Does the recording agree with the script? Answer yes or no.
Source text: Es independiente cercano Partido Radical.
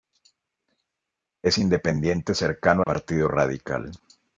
yes